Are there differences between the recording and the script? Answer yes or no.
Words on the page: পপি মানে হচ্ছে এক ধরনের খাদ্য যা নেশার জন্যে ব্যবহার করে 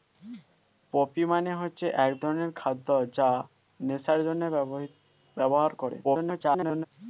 yes